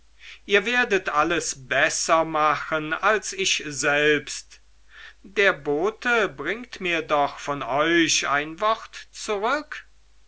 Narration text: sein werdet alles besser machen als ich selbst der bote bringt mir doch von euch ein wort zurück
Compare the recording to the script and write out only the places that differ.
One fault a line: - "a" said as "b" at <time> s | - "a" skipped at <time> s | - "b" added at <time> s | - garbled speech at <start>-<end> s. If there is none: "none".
- "sein" said as "ihr" at 0.5 s